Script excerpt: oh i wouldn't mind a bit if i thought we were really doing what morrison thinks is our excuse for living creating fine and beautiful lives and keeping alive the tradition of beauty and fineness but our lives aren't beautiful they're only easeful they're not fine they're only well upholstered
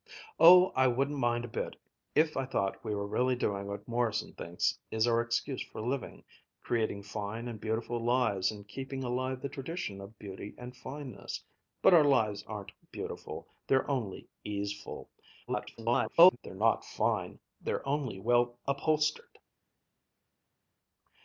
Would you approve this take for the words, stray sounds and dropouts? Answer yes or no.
no